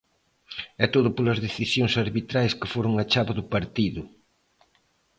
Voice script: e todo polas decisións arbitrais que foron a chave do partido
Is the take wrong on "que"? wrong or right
right